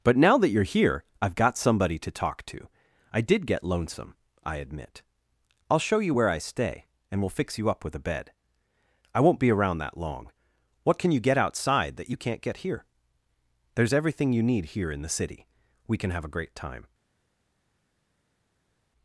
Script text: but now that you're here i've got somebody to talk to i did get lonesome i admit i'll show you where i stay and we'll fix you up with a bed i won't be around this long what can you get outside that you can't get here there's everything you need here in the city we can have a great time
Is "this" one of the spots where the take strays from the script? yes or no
yes